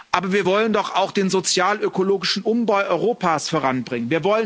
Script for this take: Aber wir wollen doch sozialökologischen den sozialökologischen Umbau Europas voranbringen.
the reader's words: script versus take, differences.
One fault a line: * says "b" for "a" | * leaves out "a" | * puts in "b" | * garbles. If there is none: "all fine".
* says "auch" for "sozialökologischen"